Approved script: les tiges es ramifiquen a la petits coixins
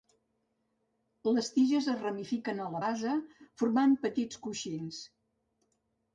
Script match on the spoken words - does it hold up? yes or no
no